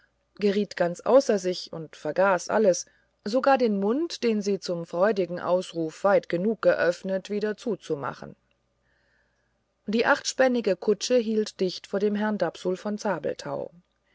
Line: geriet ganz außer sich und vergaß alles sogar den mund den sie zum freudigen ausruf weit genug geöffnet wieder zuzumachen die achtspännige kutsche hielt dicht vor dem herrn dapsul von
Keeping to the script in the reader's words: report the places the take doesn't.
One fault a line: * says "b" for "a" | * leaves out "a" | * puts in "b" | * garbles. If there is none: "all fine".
all fine